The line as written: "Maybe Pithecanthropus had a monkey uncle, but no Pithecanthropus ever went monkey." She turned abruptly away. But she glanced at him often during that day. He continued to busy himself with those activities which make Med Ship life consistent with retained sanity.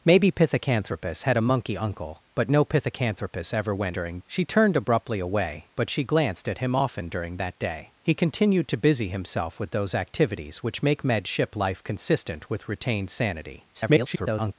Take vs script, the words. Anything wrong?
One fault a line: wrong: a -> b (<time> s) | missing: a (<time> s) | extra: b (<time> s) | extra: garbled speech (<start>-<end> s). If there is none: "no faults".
wrong: monkey -> during (3.9 s)
extra: garbled speech (13.7-14.5 s)